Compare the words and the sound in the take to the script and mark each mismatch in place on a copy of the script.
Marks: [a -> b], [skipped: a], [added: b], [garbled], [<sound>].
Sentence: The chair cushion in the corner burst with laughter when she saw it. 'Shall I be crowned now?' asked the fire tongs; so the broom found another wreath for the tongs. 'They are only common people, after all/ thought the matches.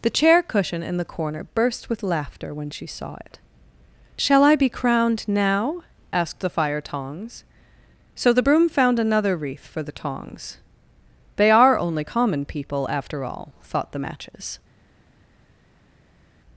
The chair cushion in the corner burst with laughter when she saw it. 'Shall I be crowned now?' asked the fire tongs; so the broom found another wreath for the tongs. 'They are only common people, after all/ thought the matches.